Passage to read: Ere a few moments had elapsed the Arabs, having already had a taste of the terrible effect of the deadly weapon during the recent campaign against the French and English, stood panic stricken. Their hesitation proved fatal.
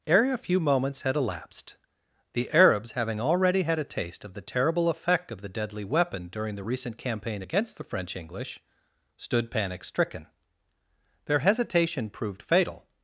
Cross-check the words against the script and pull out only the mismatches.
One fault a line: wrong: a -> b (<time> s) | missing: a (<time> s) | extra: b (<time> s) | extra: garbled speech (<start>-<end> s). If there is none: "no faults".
missing: and (8.2 s)